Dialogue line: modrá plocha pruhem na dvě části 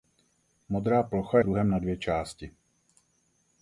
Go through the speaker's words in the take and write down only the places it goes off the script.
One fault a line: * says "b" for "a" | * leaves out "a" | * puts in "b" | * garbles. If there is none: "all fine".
all fine